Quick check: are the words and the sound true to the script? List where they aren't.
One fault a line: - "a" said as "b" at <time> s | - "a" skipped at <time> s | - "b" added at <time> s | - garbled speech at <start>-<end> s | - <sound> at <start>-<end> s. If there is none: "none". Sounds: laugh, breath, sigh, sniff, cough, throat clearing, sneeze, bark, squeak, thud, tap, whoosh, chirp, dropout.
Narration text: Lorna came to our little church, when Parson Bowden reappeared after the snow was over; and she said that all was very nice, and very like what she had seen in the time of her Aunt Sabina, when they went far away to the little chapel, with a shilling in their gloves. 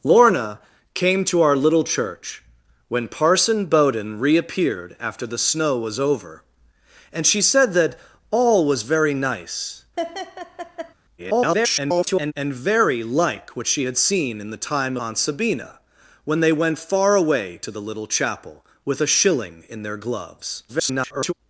- laugh at 10.0-10.9 s
- garbled speech at 11.2-12.3 s
- "of her" skipped at 15.0 s
- garbled speech at 20.7-21.3 s